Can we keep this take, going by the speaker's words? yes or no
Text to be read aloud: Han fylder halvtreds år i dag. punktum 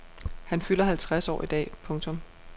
yes